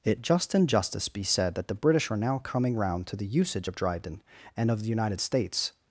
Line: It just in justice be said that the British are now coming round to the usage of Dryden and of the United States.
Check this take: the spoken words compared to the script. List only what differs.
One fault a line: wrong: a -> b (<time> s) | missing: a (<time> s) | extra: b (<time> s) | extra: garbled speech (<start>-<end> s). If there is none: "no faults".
no faults